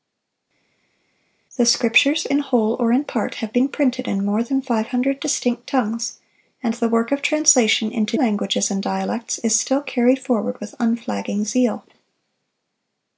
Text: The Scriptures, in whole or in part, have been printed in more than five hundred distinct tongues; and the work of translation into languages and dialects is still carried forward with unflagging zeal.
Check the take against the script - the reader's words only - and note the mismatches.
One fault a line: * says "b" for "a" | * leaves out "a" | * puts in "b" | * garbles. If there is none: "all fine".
all fine